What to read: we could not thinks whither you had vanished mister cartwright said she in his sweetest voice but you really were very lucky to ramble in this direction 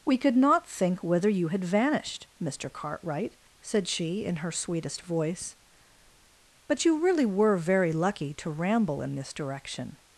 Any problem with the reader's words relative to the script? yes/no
yes